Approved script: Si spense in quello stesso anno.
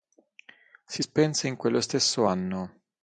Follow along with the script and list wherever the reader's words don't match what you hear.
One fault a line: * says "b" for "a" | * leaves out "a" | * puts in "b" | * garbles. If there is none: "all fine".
all fine